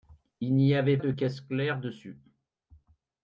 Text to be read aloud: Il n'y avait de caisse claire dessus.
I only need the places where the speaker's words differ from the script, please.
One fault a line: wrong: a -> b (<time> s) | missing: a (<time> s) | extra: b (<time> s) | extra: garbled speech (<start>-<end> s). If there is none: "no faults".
no faults